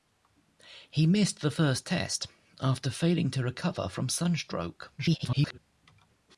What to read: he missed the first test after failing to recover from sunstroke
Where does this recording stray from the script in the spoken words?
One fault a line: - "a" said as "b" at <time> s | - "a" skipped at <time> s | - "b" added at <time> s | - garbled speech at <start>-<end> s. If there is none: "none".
- garbled speech at 5.0-5.6 s